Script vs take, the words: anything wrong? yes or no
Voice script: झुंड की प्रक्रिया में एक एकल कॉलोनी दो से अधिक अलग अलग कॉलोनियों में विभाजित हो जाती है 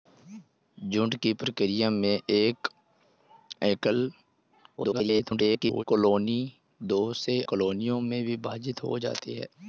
yes